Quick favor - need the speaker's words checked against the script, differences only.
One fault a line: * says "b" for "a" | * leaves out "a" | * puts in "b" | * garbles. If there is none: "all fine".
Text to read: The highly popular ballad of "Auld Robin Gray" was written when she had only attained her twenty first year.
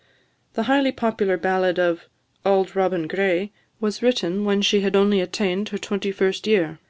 all fine